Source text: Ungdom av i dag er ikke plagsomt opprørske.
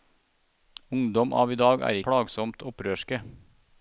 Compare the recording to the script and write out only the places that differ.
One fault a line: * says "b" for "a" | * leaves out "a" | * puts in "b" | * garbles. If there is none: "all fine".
* leaves out "ikke"